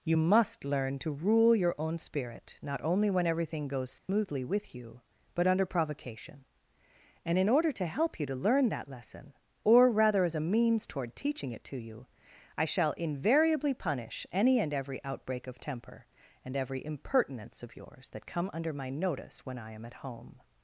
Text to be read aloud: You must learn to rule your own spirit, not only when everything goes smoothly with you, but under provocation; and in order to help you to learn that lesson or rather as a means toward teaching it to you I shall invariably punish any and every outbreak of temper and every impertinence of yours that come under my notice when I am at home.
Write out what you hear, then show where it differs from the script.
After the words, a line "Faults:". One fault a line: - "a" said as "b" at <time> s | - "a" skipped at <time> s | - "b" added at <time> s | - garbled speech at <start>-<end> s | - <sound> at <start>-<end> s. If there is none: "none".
You must learn to rule your own spirit, not only when everything goes smoothly with you, but under provocation; and in order to help you to learn that lesson or rather as a means toward teaching it to you I shall invariably punish any and every outbreak of temper and every impertinence of yours that come under my notice when I am at home.
Faults:
- dropout at 4.0-4.1 s